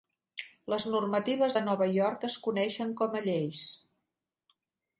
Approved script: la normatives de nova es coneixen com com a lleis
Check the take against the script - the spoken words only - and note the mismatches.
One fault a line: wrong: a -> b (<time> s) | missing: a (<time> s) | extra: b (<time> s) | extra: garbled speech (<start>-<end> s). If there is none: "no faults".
wrong: la -> les (0.7 s)
extra: york (2.0 s)
missing: com (3.2 s)